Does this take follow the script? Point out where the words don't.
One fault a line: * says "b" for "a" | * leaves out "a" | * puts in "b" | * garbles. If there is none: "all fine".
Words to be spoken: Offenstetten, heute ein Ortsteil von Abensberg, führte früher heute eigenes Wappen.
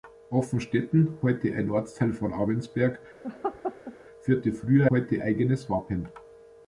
all fine